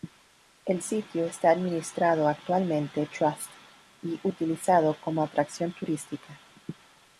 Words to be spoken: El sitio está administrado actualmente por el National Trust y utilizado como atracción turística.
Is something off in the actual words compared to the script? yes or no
yes